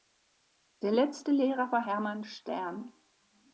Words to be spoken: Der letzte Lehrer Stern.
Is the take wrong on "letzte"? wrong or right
right